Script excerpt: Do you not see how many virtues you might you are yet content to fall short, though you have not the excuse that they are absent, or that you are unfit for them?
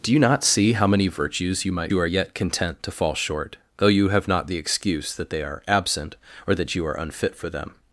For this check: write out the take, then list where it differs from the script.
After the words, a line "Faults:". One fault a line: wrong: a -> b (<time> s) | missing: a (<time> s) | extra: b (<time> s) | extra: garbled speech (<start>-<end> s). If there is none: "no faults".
Do you not see how many virtues you might you are yet content to fall short, though you have not the excuse that they are absent, or that you are unfit for them?
Faults:
no faults